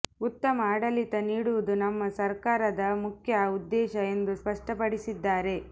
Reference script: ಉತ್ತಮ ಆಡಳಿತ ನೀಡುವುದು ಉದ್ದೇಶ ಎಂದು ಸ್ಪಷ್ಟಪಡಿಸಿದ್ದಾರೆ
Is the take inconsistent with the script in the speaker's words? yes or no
yes